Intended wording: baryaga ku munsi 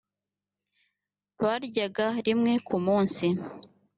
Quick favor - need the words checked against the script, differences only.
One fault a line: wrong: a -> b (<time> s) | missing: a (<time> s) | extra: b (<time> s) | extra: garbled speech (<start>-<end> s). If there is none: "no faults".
extra: rimwe (2.2 s)